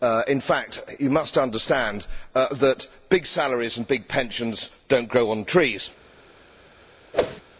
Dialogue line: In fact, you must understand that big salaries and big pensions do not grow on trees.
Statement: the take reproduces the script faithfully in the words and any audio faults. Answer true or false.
false